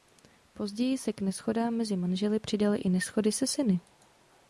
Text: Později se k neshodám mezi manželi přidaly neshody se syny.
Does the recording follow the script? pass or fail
fail